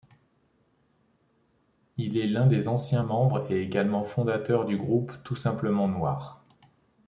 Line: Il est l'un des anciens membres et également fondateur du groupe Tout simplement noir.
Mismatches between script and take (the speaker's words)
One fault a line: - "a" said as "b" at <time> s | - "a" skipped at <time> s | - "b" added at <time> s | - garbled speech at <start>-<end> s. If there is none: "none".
none